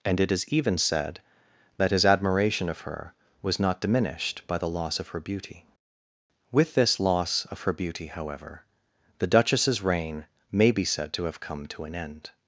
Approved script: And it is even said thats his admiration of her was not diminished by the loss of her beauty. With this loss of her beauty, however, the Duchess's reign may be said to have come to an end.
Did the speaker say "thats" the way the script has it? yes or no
no